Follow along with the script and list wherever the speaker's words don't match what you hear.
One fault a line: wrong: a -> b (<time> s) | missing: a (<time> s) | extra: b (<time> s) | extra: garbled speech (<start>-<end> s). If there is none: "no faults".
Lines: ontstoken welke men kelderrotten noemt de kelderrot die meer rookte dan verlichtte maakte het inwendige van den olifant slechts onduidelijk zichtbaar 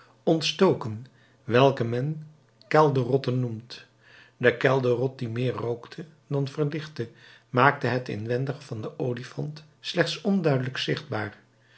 no faults